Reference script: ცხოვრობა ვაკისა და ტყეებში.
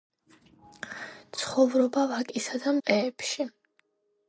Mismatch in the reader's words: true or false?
false